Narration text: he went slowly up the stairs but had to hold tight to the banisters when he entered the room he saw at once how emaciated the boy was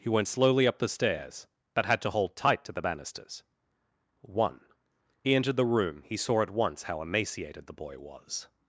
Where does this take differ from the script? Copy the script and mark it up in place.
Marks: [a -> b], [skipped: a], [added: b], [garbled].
he went slowly up the stairs but had to hold tight to the banisters [when -> one] he entered the room he saw at once how emaciated the boy was